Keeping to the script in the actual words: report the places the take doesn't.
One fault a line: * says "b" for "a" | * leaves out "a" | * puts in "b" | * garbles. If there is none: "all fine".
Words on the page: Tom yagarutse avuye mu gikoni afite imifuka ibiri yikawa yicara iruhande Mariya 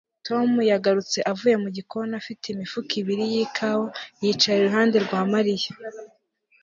* puts in "rwa"